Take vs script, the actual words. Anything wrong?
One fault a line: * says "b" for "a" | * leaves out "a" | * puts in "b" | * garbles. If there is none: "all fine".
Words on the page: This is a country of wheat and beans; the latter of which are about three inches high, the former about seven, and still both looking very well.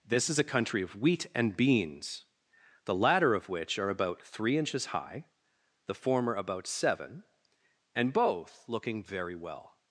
* leaves out "still"